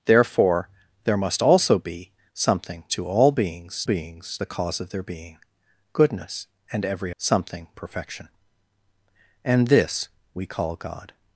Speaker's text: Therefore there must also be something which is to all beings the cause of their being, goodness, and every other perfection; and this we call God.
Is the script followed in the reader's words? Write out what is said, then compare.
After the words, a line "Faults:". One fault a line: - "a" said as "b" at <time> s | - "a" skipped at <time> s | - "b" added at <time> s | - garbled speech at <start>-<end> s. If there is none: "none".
Therefore there must also be something to all beings beings the cause of their being, goodness, and every something perfection; and this we call God.
Faults:
- "which is" skipped at 2.8 s
- "beings" added at 3.8 s
- "other" said as "something" at 7.2 s